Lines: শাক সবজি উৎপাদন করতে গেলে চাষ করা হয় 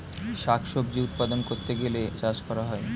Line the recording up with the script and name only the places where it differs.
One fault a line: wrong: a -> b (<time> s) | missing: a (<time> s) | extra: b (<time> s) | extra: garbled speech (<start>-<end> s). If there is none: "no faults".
no faults